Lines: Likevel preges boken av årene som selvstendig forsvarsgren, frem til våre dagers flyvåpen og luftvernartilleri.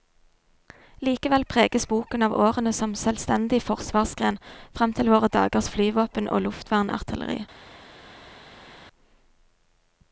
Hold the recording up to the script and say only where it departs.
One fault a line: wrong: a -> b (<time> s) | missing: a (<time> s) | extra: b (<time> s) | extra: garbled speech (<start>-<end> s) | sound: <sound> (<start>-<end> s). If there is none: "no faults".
no faults